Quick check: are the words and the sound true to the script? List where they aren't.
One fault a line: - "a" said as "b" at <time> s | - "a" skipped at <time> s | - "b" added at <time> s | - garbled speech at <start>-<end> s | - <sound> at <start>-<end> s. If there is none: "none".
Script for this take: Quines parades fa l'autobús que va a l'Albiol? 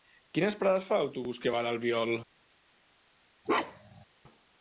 - bark at 3.5-4.1 s